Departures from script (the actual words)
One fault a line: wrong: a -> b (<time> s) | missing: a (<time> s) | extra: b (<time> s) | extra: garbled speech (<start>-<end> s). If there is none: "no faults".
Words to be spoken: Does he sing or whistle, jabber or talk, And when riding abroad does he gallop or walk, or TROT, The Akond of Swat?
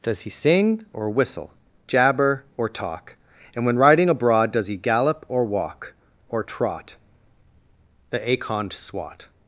missing: of (8.7 s)